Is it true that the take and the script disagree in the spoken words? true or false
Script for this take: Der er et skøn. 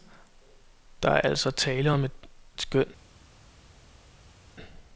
true